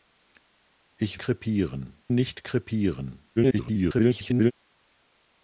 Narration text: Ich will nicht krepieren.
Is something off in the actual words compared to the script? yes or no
yes